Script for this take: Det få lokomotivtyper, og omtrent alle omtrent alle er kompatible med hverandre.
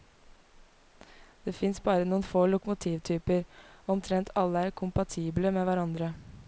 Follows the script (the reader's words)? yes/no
no